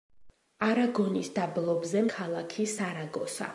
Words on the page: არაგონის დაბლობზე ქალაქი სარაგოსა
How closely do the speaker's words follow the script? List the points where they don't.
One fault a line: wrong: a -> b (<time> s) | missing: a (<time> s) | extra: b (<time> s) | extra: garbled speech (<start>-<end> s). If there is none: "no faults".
no faults